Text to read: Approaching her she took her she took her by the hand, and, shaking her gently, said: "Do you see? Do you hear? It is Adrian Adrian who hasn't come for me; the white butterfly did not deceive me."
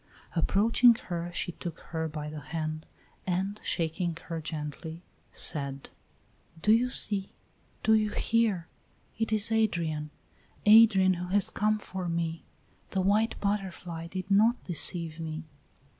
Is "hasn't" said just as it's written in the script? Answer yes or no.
no